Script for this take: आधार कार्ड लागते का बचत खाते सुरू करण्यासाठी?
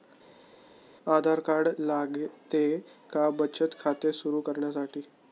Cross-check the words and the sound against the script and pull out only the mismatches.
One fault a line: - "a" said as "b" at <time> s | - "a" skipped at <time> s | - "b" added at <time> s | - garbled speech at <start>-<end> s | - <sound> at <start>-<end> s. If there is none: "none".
none